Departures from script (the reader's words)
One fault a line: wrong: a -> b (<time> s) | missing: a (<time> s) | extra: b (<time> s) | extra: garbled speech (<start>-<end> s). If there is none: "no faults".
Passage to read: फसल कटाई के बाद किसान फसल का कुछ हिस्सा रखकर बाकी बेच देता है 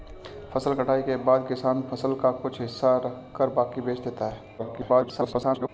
extra: garbled speech (4.6-5.7 s)